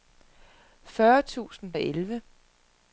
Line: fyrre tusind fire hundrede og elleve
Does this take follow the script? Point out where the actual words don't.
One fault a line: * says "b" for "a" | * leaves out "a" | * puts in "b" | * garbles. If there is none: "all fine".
* leaves out "fire hundrede"